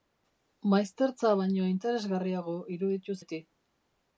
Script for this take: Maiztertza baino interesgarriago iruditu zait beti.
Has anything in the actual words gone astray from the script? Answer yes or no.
yes